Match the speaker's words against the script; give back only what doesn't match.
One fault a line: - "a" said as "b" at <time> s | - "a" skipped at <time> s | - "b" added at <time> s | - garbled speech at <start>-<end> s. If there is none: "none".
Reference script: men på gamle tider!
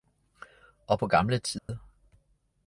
- "men" said as "og" at 0.9 s